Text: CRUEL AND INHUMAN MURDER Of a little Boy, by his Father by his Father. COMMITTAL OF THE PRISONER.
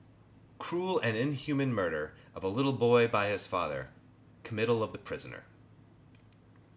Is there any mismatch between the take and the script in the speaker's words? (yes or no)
yes